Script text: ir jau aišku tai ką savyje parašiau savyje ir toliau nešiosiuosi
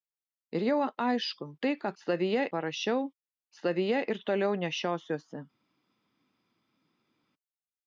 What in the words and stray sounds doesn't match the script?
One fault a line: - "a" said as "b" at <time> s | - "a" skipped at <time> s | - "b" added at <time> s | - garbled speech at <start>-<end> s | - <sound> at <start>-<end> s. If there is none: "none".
none